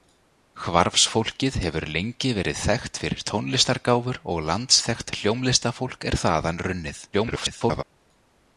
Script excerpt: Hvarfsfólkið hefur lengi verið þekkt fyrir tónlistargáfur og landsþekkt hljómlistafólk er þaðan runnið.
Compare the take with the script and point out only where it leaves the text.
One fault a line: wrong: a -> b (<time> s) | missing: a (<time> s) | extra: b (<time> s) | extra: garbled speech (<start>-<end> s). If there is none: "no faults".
extra: garbled speech (7.1-7.8 s)